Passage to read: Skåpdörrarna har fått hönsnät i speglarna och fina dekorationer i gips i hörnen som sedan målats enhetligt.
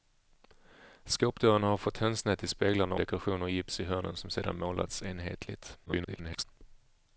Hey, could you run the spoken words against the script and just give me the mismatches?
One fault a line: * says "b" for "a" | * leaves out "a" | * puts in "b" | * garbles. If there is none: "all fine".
* leaves out "och fina"
* garbles